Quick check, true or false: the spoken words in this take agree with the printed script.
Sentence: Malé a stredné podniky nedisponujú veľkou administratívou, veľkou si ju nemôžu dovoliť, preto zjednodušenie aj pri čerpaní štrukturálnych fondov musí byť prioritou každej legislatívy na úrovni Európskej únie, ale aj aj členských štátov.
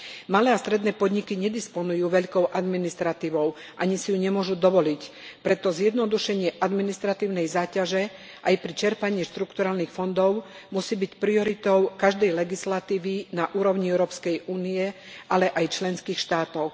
false